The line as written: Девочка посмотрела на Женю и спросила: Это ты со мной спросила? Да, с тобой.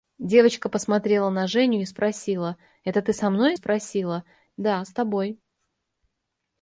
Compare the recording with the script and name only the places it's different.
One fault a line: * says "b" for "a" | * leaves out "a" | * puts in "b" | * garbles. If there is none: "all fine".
all fine